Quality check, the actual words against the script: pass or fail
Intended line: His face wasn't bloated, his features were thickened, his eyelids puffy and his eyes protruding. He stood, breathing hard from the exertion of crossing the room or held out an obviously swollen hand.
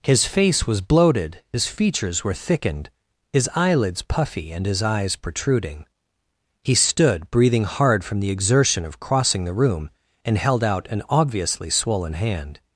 fail